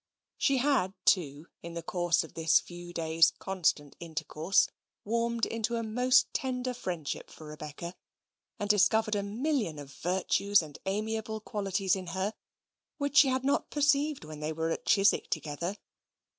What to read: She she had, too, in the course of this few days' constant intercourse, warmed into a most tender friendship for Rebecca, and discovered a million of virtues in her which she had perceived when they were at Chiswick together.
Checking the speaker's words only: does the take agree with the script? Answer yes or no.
no